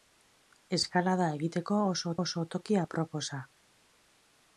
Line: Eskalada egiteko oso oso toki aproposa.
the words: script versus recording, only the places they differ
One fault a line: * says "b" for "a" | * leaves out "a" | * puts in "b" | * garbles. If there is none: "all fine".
all fine